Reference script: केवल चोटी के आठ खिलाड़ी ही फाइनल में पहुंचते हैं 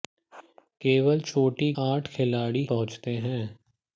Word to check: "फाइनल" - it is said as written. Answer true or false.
false